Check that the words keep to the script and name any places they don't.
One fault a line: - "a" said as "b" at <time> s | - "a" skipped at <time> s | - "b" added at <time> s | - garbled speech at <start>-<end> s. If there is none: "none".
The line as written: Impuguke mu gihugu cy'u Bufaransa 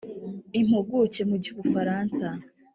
- "gihugu" skipped at 1.4 s